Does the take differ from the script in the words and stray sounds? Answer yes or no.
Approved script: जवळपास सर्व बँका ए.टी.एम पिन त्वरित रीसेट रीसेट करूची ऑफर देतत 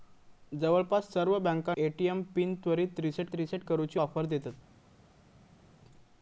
no